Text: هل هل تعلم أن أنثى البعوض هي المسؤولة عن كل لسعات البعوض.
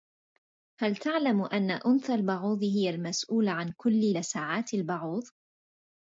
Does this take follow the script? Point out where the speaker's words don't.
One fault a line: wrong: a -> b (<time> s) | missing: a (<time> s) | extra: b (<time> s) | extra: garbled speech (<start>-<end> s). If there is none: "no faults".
missing: هل (0.9 s)